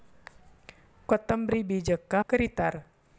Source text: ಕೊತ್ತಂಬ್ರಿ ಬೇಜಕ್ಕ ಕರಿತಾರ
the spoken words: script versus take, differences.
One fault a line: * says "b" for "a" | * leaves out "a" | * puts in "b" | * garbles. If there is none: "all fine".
all fine